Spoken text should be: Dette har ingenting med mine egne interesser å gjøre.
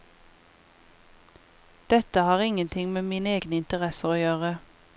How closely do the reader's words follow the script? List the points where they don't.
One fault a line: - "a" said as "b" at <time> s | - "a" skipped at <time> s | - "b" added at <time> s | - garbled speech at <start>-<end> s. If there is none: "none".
none